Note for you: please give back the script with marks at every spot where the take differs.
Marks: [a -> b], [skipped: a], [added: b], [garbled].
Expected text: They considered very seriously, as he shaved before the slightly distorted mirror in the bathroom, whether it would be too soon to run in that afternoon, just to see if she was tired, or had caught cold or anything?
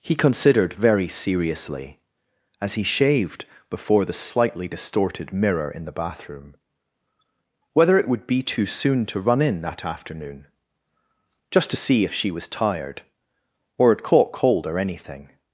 [They -> He] considered very seriously, as he shaved before the slightly distorted mirror in the bathroom, whether it would be too soon to run in that afternoon, just to see if she was tired, or had caught cold or anything?